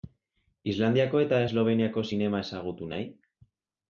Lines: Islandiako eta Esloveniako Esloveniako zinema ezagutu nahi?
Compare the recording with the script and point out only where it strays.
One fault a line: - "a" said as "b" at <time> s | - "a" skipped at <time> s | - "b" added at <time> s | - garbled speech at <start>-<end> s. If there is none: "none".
- "Esloveniako" skipped at 2.0 s